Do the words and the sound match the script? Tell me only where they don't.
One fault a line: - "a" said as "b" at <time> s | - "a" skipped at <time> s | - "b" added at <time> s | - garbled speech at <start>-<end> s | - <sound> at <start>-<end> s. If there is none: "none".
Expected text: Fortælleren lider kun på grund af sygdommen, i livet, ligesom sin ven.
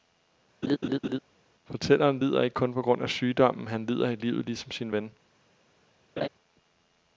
- laugh at 0.6-1.2 s
- "ikke" added at 2.4 s
- "han lider" added at 3.7 s
- laugh at 6.2-6.3 s